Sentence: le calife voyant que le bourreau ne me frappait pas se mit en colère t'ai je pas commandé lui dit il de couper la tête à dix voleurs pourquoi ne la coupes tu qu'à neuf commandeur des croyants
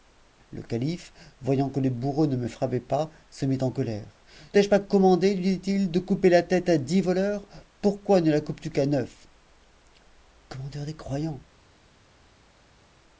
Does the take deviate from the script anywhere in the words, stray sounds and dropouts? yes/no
no